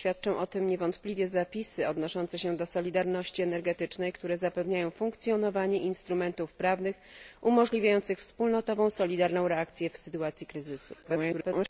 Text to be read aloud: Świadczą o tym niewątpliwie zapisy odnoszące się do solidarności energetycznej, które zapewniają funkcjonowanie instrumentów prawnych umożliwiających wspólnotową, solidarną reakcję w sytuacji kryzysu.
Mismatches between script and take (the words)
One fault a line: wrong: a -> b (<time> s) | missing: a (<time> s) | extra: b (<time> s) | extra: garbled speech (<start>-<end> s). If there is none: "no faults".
extra: garbled speech (11.0-11.7 s)